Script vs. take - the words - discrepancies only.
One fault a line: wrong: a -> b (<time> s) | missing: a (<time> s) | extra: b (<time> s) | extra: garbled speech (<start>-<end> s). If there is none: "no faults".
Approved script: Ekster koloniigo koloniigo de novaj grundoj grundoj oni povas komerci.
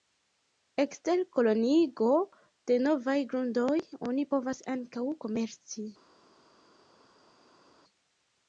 missing: koloniigo (2.1 s)
missing: grundoj (3.8 s)
extra: ankaŭ (4.8 s)